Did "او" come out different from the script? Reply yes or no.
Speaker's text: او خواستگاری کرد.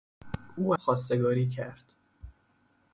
no